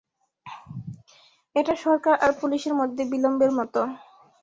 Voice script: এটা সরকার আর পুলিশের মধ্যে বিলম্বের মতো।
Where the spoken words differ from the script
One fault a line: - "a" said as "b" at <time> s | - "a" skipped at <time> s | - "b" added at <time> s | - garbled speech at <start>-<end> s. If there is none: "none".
none